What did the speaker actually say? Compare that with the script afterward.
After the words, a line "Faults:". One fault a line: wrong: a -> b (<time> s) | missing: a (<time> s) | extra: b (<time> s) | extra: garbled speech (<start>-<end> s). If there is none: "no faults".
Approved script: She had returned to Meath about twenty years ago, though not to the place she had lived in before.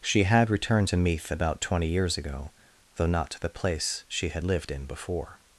She had returned to Meath about twenty years ago, though not to the place she had lived in before.
Faults:
no faults